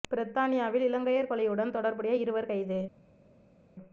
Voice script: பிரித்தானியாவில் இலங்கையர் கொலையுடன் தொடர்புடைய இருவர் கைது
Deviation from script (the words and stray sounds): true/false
false